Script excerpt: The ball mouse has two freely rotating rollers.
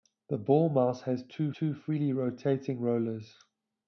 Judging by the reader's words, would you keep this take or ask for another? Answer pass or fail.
fail